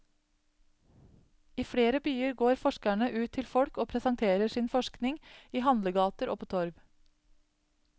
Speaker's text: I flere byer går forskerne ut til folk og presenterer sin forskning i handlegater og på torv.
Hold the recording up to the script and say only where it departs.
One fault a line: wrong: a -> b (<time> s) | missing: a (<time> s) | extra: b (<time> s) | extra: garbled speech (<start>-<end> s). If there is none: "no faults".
no faults